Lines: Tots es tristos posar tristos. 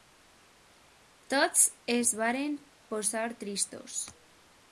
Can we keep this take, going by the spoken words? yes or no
no